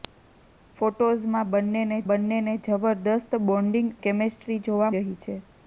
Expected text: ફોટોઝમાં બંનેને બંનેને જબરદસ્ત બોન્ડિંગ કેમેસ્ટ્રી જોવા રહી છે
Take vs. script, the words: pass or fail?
pass